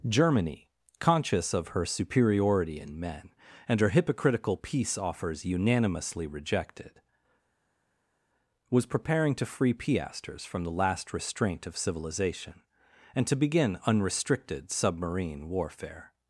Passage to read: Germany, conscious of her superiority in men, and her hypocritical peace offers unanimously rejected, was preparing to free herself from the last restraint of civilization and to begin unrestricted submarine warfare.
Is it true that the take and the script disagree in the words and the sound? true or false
true